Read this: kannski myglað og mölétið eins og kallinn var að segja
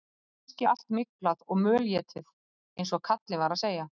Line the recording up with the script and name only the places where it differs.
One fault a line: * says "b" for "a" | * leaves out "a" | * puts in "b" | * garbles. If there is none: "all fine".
* puts in "allt"